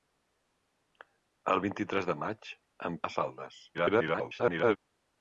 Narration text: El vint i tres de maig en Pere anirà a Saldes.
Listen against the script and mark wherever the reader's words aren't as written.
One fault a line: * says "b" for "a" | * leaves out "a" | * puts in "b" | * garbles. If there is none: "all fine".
* leaves out "Pere anirà"
* garbles